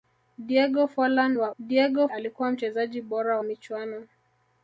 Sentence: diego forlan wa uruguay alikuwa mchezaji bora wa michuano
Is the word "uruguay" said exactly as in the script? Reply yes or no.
no